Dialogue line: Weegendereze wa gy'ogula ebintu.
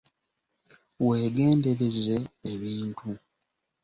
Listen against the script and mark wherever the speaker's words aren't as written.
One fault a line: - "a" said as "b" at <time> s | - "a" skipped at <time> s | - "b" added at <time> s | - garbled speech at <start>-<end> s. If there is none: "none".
- "wa gy'ogula" skipped at 2.1 s